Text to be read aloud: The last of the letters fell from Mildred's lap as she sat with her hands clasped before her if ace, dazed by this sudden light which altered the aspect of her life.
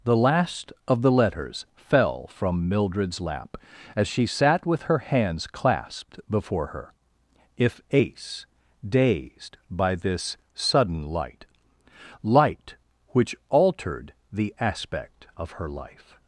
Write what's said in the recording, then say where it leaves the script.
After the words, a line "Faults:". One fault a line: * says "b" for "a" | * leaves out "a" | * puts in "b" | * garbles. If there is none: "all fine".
The last of the letters fell from Mildred's lap as she sat with her hands clasped before her if ace, dazed by this sudden light light which altered the aspect of her life.
Faults:
* puts in "light"